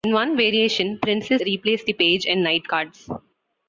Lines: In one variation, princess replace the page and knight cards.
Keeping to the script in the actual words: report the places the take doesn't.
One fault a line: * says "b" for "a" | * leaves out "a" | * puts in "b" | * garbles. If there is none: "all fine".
all fine